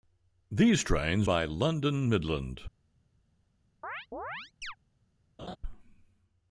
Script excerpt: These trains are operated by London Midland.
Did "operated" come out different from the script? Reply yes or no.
yes